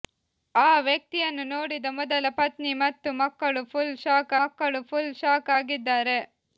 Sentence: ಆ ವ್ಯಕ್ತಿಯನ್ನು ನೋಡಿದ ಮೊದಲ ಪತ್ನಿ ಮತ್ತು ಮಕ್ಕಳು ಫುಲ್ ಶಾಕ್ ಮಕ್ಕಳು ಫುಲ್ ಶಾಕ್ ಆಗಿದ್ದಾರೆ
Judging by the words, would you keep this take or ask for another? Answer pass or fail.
pass